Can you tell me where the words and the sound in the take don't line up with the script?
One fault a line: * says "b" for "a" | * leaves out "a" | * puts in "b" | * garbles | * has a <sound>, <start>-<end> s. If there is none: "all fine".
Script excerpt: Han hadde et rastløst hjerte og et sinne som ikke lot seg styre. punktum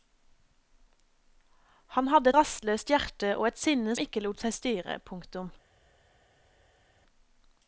* leaves out "et"
* leaves out "som"